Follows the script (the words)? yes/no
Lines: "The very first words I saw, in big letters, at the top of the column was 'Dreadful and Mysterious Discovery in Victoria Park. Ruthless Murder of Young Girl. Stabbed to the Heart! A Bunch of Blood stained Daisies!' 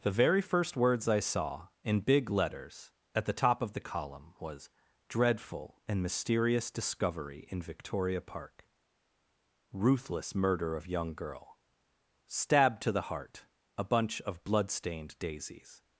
yes